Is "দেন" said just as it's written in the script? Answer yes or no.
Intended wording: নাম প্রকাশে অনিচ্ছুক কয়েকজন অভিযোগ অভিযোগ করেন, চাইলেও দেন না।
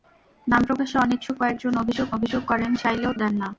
yes